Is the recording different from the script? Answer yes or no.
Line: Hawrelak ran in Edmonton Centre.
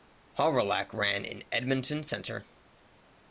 no